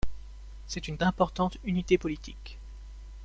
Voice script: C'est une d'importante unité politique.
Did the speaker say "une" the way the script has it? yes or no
yes